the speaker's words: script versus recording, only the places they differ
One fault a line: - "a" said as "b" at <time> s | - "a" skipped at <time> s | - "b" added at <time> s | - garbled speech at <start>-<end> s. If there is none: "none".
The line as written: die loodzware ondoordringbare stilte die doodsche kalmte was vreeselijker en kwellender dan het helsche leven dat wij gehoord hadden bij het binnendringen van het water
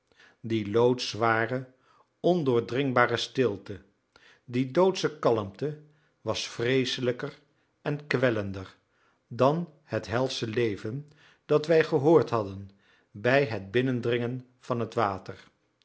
none